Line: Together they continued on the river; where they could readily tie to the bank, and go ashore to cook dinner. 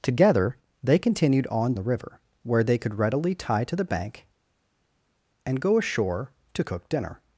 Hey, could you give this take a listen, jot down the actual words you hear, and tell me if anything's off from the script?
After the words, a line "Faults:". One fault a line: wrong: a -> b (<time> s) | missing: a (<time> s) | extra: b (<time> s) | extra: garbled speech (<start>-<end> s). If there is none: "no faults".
Together they continued on the river; where they could readily tie to the bank, and go ashore to cook dinner.
Faults:
no faults